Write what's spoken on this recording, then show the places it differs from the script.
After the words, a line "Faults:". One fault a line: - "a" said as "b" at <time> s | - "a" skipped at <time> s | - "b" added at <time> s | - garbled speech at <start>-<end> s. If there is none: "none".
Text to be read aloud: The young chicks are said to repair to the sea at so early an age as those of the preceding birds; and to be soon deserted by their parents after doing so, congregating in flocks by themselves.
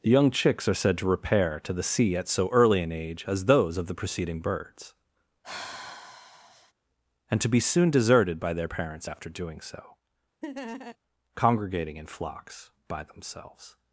The young chicks are said to repair to the sea at so early an age as those of the preceding birds; and to be soon deserted by their parents after doing so, congregating in flocks by themselves.
Faults:
none